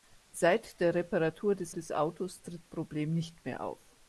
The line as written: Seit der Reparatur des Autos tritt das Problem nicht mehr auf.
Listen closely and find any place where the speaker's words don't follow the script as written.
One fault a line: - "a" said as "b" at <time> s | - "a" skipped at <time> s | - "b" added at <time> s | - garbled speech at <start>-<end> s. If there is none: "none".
- "des" added at 1.7 s
- "das" skipped at 2.7 s